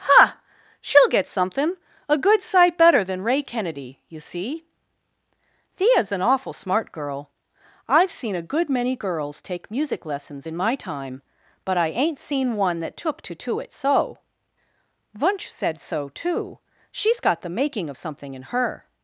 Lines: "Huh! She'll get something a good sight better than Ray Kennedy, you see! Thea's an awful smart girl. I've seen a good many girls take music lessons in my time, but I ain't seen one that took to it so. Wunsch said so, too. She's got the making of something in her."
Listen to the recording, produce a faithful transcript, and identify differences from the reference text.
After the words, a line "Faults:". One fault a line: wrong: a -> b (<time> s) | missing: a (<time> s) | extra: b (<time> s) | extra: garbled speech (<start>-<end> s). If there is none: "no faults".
"Huh! She'll get something a good sight better than Ray Kennedy, you see! Thea's an awful smart girl. I've seen a good many girls take music lessons in my time, but I ain't seen one that took to to it so. Wunsch said so, too. She's got the making of something in her."
Faults:
extra: to (13.3 s)